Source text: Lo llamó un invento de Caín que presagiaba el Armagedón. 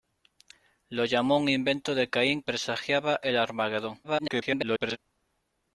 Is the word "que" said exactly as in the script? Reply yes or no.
no